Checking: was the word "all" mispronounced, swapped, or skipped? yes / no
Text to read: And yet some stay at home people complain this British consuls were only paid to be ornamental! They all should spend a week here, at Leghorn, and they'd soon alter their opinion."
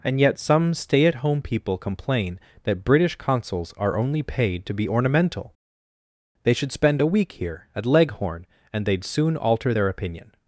yes